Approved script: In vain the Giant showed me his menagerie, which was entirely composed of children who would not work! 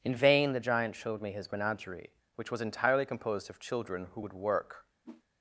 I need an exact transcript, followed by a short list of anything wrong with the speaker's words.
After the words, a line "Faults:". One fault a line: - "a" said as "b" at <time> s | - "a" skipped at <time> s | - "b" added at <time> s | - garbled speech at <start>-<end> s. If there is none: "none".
In vain the Giant showed me his menagerie, which was entirely composed of children who would work!
Faults:
- "not" skipped at 4.3 s